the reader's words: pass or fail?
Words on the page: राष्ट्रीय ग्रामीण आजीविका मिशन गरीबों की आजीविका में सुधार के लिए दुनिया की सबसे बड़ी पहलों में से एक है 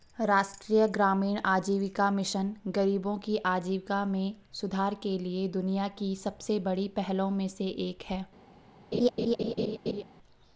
pass